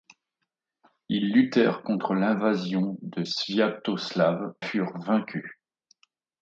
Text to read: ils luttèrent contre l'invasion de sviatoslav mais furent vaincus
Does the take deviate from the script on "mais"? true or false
true